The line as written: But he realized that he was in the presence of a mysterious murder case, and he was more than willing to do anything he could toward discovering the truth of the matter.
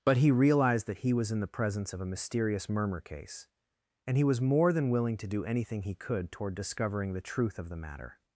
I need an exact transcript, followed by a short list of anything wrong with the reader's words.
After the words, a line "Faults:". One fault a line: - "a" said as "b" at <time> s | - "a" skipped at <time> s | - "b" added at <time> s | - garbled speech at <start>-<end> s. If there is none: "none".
But he realized that he was in the presence of a mysterious murmur case, and he was more than willing to do anything he could toward discovering the truth of the matter.
Faults:
- "murder" said as "murmur" at 2.7 s